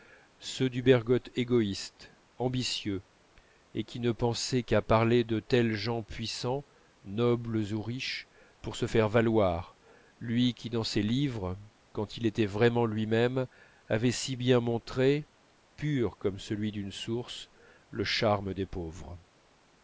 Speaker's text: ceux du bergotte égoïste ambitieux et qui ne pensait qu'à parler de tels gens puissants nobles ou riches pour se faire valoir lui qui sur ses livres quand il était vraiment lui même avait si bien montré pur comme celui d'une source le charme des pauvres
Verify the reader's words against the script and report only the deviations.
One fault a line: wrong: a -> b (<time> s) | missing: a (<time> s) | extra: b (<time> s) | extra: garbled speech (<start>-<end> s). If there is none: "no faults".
wrong: sur -> dans (10.7 s)